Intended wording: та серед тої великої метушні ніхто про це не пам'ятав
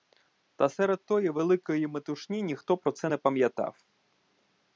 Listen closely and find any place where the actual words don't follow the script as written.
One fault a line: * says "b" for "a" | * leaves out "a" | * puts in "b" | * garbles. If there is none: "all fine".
all fine